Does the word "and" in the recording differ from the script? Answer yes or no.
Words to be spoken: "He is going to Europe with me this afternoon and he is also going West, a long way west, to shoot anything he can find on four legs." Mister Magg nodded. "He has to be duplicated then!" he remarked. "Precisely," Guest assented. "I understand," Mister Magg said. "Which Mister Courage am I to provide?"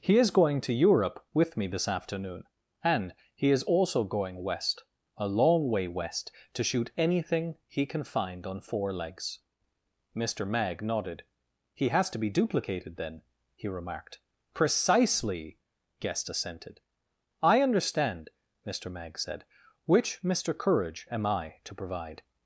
no